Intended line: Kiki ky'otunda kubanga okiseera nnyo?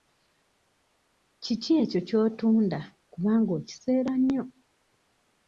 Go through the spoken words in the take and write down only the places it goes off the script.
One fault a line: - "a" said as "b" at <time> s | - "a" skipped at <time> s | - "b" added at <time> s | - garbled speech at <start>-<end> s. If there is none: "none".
- "ekyo" added at 1.8 s